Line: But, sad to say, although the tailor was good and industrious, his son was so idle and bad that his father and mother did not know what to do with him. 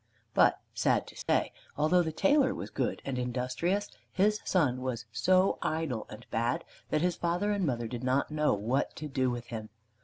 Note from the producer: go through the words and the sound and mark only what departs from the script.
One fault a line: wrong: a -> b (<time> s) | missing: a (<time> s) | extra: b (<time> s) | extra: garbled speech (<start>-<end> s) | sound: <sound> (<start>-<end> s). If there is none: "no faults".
sound: dropout (1.2-1.3 s)